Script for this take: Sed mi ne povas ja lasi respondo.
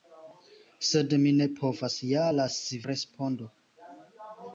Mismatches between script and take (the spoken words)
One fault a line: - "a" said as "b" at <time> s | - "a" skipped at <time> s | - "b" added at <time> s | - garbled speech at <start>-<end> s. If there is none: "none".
none